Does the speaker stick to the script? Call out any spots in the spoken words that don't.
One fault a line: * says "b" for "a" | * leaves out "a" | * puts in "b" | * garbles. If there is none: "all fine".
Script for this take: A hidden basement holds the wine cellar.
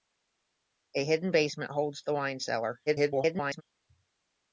* garbles